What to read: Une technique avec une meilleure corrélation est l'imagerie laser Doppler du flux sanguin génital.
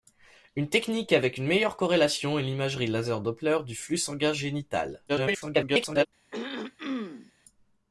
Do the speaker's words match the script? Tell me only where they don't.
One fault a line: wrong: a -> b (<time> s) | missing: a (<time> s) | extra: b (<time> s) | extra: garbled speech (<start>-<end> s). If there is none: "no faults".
extra: garbled speech (5.1-6.1 s)